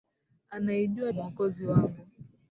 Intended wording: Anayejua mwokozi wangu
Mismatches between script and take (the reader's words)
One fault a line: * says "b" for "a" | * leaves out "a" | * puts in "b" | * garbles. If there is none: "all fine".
all fine